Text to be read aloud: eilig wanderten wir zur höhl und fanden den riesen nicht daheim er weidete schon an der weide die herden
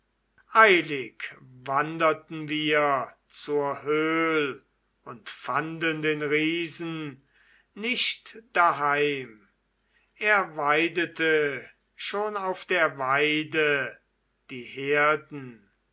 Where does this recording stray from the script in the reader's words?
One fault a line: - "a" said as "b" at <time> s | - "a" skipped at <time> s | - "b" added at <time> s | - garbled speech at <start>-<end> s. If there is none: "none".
- "an" said as "auf" at 12.4 s